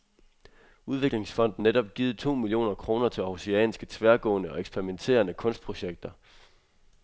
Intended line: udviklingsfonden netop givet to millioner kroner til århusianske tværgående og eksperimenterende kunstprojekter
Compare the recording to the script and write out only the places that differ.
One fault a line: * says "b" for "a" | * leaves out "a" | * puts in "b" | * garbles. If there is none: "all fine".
all fine